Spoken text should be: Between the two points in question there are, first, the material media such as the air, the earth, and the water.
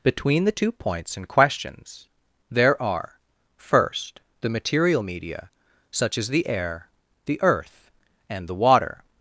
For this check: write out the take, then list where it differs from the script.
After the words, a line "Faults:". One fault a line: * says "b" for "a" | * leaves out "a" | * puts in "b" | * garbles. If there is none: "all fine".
Between the two points in questions there are, first, the material media such as the air, the earth, and the water.
Faults:
* says "questions" for "question"